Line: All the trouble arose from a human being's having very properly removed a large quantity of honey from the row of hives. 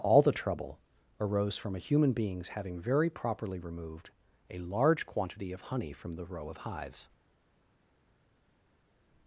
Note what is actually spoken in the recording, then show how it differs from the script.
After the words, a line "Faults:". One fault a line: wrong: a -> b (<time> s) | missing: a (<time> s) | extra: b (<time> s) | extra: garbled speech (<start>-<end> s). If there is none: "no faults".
All the trouble arose from a human being's having very properly removed a large quantity of honey from the row of hives.
Faults:
no faults